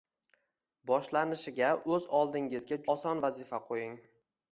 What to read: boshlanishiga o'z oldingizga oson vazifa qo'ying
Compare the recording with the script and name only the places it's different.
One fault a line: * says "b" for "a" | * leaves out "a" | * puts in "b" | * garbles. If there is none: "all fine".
all fine